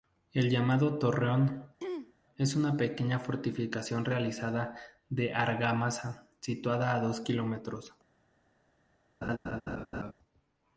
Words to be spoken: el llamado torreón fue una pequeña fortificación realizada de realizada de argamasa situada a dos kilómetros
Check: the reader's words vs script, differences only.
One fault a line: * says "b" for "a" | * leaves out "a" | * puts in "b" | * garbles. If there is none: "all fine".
* says "es" for "fue"
* leaves out "realizada de"